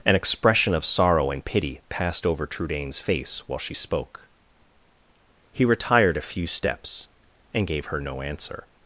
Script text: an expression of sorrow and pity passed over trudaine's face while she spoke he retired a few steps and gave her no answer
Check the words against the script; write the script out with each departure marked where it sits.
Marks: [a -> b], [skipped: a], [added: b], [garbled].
an expression of sorrow and pity passed over trudaine's face while she spoke he retired a few steps and gave her no answer